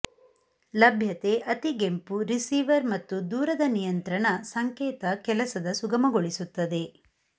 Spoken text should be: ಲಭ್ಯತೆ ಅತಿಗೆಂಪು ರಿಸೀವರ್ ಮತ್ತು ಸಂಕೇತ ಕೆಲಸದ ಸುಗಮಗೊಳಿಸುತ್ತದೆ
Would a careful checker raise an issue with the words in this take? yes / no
yes